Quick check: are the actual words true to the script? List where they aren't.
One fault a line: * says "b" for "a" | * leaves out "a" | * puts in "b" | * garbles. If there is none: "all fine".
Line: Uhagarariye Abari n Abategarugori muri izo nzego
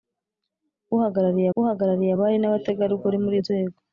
* puts in "uhagarariye"
* leaves out "izo"